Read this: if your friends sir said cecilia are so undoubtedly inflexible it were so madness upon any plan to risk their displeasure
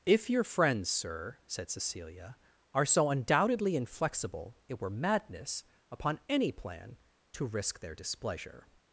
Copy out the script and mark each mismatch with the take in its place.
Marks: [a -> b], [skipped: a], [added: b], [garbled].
if your friends sir said cecilia are so undoubtedly inflexible it were [skipped: so] madness upon any plan to risk their displeasure